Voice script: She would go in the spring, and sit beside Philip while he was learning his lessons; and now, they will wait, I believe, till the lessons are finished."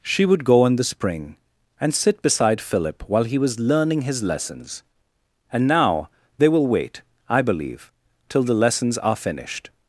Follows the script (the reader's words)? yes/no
yes